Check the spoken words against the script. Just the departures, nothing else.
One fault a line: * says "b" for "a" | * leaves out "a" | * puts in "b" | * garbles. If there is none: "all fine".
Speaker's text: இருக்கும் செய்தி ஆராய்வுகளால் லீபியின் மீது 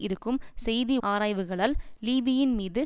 all fine